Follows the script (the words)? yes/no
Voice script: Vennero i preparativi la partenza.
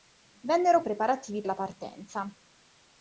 yes